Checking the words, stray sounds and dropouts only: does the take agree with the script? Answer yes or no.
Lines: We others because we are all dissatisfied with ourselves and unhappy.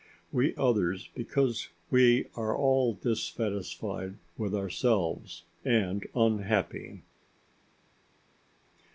yes